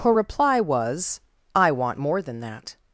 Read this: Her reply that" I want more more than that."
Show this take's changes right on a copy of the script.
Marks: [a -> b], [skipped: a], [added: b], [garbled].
Her reply [that" -> was] I want more [skipped: more] than that."